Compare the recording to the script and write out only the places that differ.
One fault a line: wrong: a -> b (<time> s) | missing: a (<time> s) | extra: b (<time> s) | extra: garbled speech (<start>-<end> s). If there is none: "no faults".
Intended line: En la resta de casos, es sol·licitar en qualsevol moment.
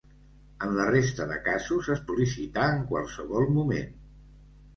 no faults